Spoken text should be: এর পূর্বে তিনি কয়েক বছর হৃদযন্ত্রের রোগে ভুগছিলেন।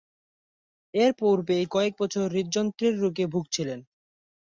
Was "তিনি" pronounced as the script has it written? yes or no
no